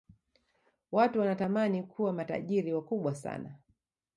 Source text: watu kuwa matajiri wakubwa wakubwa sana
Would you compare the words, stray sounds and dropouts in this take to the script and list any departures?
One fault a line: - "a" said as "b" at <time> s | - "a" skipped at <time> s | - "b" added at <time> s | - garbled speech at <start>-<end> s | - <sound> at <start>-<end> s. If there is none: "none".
- "wanatamani" added at 1.2 s
- "wakubwa" skipped at 3.1 s